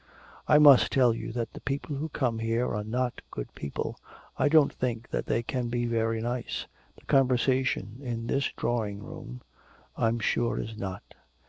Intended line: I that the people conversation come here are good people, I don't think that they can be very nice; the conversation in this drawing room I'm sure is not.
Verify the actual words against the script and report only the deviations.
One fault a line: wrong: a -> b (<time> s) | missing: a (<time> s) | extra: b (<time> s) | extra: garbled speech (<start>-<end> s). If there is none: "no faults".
extra: must tell you (0.6 s)
wrong: conversation -> who (2.0 s)
extra: not (2.8 s)